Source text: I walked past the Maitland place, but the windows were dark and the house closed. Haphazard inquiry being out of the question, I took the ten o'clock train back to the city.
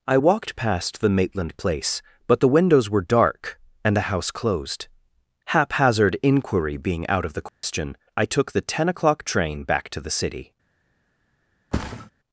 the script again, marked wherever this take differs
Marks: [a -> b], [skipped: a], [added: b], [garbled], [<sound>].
I walked past the Maitland place, but the windows were dark and the house closed. Haphazard inquiry being out of the question, [dropout] I took the ten o'clock train back to the city. [thud]